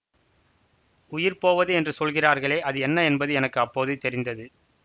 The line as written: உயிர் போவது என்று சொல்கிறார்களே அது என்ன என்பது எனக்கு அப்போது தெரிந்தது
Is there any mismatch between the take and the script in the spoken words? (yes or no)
no